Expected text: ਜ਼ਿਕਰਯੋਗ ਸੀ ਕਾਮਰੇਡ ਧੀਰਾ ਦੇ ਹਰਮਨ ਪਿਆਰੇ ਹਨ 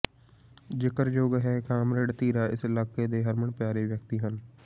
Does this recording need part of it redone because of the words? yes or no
yes